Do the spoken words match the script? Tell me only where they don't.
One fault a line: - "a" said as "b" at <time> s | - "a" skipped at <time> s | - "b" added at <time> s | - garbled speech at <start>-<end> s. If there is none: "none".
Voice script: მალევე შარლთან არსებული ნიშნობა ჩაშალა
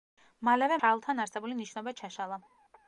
none